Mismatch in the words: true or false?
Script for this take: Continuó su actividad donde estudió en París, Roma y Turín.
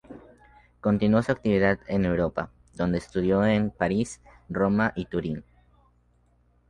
true